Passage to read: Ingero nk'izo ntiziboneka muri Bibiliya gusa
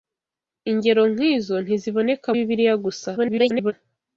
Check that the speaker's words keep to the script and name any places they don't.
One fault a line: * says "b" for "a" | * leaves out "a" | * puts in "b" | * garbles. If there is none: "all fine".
* leaves out "muri"
* garbles